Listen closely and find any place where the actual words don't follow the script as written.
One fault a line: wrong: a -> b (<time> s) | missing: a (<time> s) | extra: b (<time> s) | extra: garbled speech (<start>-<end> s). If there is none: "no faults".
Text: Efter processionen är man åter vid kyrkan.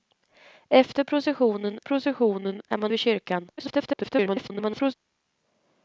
extra: processionen (1.8 s)
missing: åter (2.9 s)
extra: garbled speech (3.6-4.9 s)